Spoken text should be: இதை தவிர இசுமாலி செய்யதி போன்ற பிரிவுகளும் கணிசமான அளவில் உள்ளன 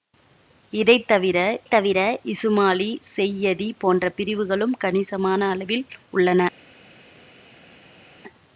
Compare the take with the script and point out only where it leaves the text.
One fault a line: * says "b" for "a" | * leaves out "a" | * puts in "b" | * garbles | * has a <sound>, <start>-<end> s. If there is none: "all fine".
* puts in "தவிர"